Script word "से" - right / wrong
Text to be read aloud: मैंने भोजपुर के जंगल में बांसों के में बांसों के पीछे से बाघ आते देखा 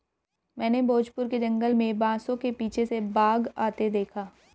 right